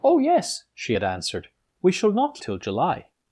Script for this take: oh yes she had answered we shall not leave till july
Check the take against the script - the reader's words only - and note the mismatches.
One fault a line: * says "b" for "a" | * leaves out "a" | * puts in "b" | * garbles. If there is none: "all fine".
* leaves out "leave"